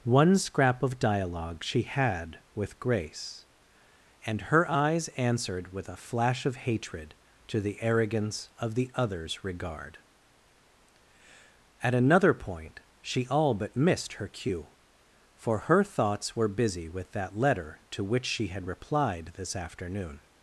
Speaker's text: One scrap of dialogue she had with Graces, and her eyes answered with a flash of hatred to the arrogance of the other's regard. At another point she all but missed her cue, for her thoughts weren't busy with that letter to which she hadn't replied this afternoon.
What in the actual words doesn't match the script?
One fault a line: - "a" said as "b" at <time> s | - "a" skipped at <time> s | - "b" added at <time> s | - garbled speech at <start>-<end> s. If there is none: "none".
- "Graces" said as "Grace" at 2.8 s
- "weren't" said as "were" at 16.4 s
- "hadn't" said as "had" at 18.5 s